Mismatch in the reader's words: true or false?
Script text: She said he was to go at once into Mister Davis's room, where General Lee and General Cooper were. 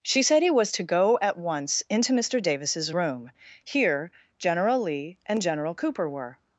true